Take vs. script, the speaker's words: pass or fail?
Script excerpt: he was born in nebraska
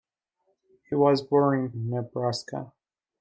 pass